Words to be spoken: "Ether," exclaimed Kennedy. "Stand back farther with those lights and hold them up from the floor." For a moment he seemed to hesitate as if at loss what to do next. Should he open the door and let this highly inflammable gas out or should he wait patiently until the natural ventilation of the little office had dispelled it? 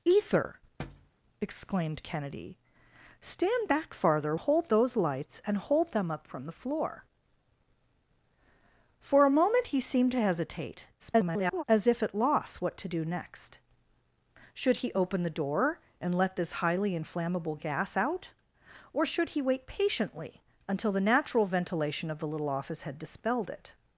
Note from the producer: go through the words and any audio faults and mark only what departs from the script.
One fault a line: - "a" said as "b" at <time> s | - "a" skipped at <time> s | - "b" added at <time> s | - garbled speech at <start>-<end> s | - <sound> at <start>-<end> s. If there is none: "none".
- thud at 0.8-1.1 s
- "with" said as "hold" at 4.3 s
- garbled speech at 11.0-11.6 s